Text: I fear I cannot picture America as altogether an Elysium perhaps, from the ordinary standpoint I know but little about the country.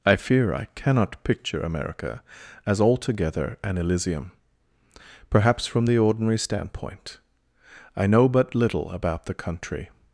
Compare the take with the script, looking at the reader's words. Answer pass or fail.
pass